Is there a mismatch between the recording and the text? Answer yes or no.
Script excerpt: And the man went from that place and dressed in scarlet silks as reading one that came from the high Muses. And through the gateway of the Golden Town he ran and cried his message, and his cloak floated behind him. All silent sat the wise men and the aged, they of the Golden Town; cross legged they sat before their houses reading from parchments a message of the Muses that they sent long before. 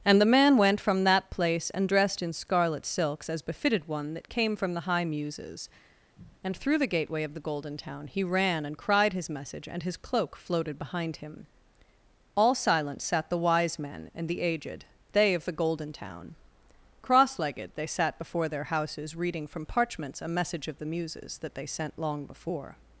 yes